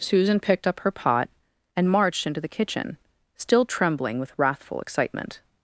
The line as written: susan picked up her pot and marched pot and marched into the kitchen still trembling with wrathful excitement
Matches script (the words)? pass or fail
fail